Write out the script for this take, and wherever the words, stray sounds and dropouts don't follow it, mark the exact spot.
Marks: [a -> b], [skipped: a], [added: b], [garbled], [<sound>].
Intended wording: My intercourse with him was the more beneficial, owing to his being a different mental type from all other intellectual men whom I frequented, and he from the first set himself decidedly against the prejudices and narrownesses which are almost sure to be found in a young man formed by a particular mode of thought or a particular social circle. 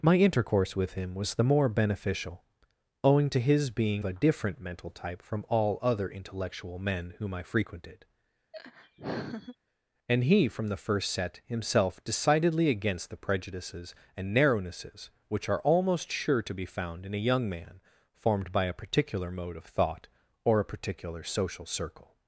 My intercourse with him was the more beneficial, owing to his being a different mental type from all other intellectual men whom I frequented, [laugh] and he from the first set himself decidedly against the prejudices and narrownesses which are almost sure to be found in a young man formed by a particular mode of thought or a particular social circle.